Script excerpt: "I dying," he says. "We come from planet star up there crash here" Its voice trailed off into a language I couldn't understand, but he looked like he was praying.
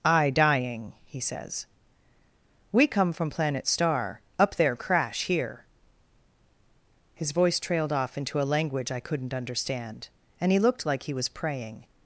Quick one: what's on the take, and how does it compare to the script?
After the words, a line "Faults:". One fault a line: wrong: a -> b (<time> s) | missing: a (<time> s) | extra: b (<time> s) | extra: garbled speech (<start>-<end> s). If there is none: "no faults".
"I dying," he says. "We come from planet star up there crash here" His voice trailed off into a language I couldn't understand, and he looked like he was praying.
Faults:
wrong: Its -> His (7.1 s)
wrong: but -> and (10.4 s)